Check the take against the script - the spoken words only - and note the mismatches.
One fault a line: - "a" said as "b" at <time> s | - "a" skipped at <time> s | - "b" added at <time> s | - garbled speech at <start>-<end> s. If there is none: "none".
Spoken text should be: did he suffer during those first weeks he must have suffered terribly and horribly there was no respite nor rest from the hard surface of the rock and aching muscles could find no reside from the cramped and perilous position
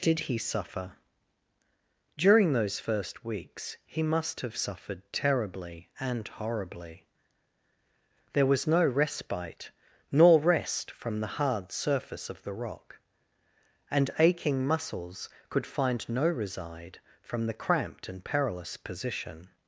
none